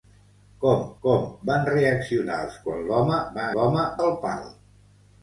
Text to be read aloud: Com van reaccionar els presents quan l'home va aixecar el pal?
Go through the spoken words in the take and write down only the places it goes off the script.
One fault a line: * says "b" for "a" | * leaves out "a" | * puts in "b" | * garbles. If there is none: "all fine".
* puts in "com"
* leaves out "presents"
* says "l'home" for "aixecar"